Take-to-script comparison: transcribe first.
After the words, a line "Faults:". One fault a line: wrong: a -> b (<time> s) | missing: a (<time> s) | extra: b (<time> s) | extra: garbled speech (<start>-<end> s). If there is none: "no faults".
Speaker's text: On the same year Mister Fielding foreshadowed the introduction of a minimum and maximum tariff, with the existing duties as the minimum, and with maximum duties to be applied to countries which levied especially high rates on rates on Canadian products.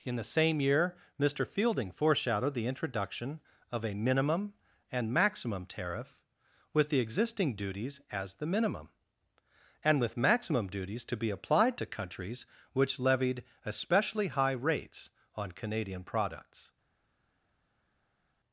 In the same year Mister Fielding foreshadowed the introduction of a minimum and maximum tariff, with the existing duties as the minimum, and with maximum duties to be applied to countries which levied especially high rates on Canadian products.
Faults:
wrong: On -> In (0.0 s)
missing: rates on (15.5 s)